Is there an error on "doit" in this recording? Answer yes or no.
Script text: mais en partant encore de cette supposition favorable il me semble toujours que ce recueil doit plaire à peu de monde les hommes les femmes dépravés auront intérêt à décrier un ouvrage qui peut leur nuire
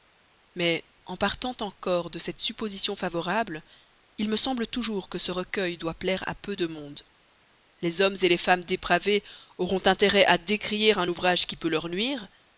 no